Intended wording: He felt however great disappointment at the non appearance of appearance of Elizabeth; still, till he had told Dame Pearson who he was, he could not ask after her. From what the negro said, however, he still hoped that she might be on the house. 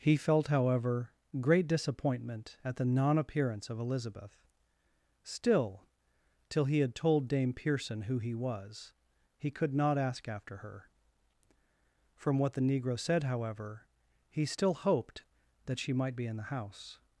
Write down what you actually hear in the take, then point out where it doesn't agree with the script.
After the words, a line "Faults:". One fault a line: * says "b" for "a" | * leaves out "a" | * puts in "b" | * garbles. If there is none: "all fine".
He felt however great disappointment at the non appearance of Elizabeth; still, till he had told Dame Pearson who he was, he could not ask after her. From what the negro said, however, he still hoped that she might be in the house.
Faults:
* leaves out "appearance of"
* says "in" for "on"